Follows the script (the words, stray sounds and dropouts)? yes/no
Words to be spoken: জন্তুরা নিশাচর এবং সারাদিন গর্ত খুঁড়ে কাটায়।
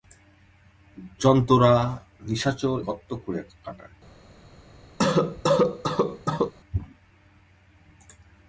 no